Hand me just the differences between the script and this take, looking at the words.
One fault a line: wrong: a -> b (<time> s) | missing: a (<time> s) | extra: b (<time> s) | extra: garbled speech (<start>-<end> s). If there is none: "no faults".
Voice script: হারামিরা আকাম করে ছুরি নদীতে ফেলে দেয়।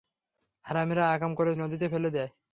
missing: ছুরি (1.5 s)